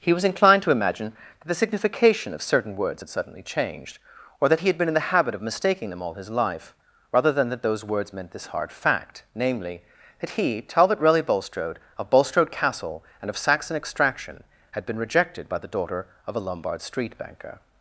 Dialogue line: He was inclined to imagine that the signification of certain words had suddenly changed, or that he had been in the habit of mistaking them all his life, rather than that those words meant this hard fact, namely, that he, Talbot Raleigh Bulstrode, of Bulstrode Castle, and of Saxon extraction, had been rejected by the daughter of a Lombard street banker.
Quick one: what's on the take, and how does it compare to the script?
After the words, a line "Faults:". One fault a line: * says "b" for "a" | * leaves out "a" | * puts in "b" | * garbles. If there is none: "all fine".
He was inclined to imagine that the signification of certain words had suddenly changed, or that he had been in the habit of mistaking them all his life, rather than that those words meant this hard fact, namely, that he, Talbot Raleigh Bulstrode, of Bulstrode Castle, and of Saxon extraction, had been rejected by the daughter of a Lombard street banker.
Faults:
all fine